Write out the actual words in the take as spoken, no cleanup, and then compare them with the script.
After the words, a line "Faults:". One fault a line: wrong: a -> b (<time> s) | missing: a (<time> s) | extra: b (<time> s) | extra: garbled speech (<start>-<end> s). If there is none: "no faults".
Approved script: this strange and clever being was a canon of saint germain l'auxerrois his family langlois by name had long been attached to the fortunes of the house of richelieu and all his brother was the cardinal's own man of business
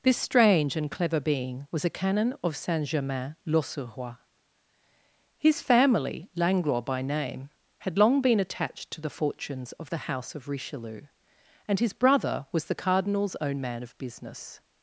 this strange and clever being was a canon of saint germain l'auxerrois his family langlois by name had long been attached to the fortunes of the house of richelieu and his brother was the cardinal's own man of business
Faults:
missing: all (11.8 s)